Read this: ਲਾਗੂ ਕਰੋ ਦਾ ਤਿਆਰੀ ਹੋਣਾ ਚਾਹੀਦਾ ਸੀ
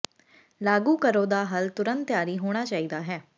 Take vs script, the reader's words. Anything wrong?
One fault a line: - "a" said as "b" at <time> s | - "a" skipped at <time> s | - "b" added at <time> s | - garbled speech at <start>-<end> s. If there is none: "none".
- "ਹੱਲ ਤੁਰੰਤ" added at 1.4 s
- "ਸੀ" said as "ਹੈ" at 3.0 s